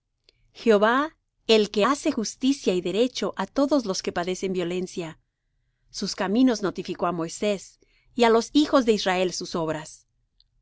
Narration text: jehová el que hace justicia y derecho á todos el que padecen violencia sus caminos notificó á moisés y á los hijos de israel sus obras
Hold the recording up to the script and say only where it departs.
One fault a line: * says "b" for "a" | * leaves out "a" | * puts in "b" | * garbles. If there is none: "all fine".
* says "los" for "el"